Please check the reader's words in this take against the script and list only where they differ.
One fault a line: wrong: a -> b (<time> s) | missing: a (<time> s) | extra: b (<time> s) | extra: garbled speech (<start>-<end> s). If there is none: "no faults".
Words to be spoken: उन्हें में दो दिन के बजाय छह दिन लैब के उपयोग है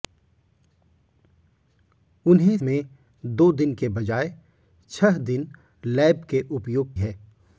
no faults